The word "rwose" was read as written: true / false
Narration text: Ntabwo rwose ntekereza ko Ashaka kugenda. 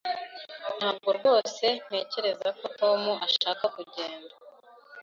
true